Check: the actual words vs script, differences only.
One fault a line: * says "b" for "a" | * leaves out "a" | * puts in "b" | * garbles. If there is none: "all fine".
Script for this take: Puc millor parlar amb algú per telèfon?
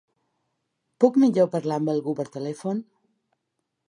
all fine